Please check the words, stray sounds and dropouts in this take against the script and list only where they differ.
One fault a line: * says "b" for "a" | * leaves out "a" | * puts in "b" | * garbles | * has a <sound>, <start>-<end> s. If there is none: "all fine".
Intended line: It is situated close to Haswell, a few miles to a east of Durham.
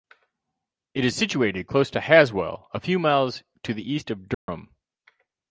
* says "the" for "a"
* has a dropout, 4.3-4.5 s